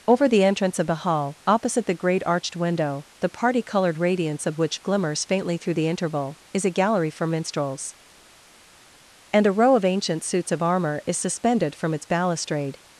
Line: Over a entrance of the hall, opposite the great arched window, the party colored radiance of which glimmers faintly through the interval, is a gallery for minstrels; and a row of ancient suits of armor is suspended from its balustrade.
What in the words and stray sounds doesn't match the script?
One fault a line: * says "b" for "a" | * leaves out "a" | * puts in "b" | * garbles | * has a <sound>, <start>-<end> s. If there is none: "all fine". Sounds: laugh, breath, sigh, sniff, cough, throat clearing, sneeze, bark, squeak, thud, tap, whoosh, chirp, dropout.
* says "the" for "a"